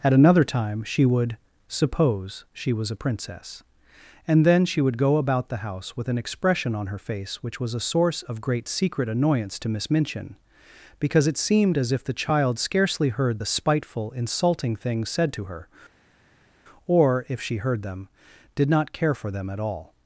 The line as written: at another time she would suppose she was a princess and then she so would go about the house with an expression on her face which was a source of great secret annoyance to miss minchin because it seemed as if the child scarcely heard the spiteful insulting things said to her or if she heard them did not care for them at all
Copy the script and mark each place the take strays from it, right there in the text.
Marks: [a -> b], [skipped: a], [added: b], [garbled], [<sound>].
at another time she would suppose she was a princess and then she [skipped: so] would go about the house with an expression on her face which was a source of great secret annoyance to miss minchin because it seemed as if the child scarcely heard the spiteful insulting things said to her or if she heard them did not care for them at all